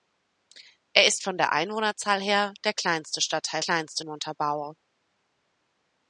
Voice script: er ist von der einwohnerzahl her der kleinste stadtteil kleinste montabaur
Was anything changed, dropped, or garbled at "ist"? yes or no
no